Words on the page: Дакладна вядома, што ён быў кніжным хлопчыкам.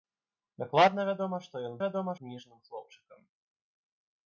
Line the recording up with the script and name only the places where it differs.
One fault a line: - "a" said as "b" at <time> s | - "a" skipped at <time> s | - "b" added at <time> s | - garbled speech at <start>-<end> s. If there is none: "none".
- "быў" said as "вядома" at 1.8 s